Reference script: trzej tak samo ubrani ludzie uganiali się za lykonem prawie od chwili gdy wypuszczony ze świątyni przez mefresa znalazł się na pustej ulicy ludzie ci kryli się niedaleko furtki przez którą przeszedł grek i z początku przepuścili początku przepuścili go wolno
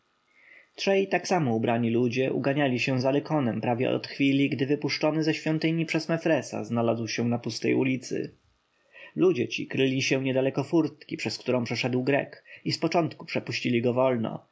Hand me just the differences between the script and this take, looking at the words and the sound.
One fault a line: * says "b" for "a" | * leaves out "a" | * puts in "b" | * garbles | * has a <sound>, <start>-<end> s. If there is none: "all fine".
* leaves out "początku przepuścili"